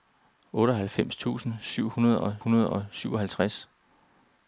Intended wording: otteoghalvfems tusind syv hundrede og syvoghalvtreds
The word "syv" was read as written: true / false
true